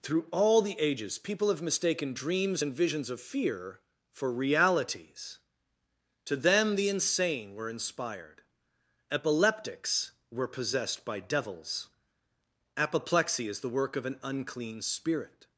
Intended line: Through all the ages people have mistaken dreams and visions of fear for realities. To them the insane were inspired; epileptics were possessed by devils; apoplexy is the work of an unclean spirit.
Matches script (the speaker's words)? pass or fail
pass